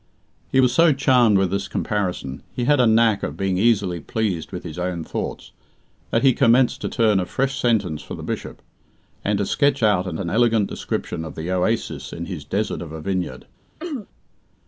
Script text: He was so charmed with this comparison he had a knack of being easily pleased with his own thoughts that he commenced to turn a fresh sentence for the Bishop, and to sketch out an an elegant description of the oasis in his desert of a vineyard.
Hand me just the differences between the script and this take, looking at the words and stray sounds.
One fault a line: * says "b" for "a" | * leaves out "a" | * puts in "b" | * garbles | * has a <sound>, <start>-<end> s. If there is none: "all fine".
* has a throat clearing, 13.8-14.1 s